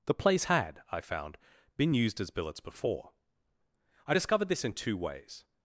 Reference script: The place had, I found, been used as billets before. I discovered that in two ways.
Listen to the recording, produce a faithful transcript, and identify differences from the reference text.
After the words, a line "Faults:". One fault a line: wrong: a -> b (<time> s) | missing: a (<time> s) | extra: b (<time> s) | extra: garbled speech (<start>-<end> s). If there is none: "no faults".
The place had, I found, been used as billets before. I discovered this in two ways.
Faults:
wrong: that -> this (4.5 s)